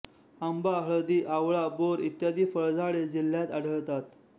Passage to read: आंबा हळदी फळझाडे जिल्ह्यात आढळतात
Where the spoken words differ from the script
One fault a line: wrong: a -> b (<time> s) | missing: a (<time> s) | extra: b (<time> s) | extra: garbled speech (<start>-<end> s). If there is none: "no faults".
extra: आवळा बोर इत्यादी (1.4 s)